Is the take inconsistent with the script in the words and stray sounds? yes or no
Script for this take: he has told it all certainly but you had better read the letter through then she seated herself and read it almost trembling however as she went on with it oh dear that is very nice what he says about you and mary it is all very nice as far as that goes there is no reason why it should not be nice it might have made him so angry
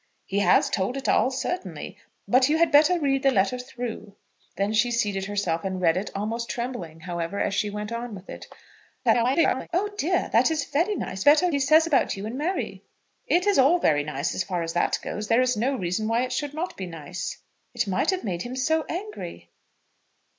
yes